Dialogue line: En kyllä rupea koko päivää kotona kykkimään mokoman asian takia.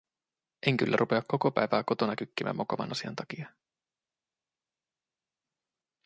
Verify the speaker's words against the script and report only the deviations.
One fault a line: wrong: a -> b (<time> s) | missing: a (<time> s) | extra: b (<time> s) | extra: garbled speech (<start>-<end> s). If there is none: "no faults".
no faults